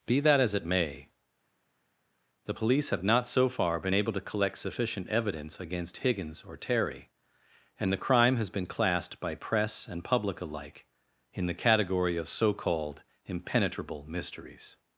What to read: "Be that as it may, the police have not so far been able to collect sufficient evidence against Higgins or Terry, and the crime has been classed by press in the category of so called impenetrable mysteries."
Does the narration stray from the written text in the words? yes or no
yes